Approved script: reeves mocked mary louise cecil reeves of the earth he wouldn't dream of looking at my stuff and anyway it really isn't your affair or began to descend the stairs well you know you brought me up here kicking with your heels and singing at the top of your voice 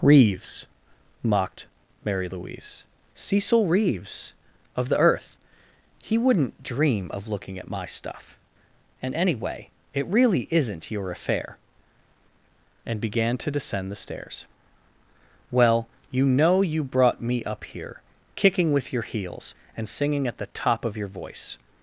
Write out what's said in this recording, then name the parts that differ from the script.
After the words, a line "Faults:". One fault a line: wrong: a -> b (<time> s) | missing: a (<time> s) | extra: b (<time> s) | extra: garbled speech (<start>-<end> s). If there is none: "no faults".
reeves mocked mary louise cecil reeves of the earth he wouldn't dream of looking at my stuff and anyway it really isn't your affair and began to descend the stairs well you know you brought me up here kicking with your heels and singing at the top of your voice
Faults:
wrong: or -> and (12.9 s)